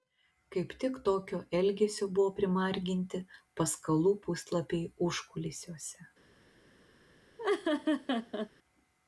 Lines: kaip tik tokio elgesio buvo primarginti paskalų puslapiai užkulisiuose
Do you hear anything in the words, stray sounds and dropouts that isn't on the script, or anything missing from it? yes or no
yes